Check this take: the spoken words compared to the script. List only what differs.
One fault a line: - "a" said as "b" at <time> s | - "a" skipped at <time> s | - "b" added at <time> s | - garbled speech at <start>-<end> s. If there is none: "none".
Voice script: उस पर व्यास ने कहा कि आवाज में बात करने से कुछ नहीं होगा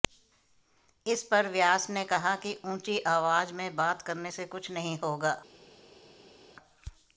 - "उस" said as "इस" at 1.1 s
- "ऊंची" added at 2.6 s